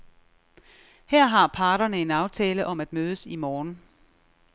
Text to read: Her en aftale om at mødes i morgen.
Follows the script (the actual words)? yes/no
no